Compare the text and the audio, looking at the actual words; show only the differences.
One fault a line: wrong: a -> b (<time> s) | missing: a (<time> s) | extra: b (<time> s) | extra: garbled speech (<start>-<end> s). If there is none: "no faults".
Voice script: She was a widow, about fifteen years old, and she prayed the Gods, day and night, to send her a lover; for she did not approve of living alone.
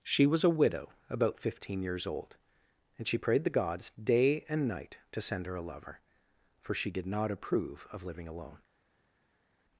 no faults